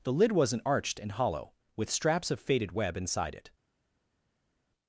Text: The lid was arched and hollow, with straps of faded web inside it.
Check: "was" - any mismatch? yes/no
yes